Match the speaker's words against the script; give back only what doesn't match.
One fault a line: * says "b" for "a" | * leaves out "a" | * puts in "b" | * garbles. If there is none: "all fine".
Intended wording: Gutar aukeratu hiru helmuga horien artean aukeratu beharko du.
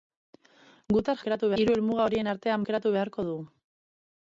all fine